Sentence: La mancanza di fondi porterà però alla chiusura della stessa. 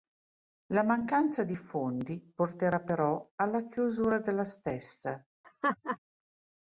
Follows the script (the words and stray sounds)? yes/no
no